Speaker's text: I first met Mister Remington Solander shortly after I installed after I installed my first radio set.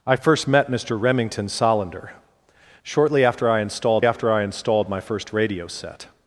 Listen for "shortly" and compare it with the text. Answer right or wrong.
right